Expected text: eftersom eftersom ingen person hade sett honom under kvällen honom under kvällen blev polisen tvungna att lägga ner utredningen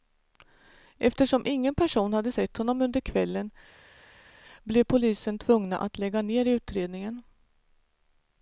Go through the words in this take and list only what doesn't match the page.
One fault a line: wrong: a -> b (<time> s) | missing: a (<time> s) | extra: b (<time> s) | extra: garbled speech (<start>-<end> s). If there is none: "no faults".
missing: eftersom (1.4 s)
missing: honom under kvällen (3.5 s)